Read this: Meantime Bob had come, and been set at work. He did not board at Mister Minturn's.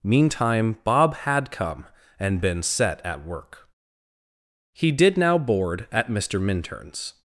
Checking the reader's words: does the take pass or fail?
fail